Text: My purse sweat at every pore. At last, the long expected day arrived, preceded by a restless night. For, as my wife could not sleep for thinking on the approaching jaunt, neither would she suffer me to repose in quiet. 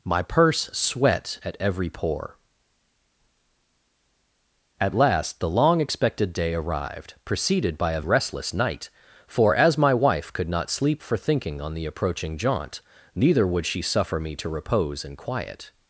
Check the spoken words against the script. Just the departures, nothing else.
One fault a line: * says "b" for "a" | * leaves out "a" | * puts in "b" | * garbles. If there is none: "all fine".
all fine